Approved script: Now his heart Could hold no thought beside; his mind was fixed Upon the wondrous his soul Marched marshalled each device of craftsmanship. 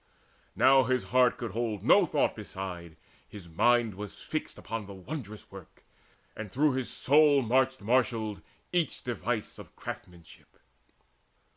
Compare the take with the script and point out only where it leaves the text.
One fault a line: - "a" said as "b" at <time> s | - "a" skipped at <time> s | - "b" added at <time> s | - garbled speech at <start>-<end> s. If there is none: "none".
- "work and through" added at 5.5 s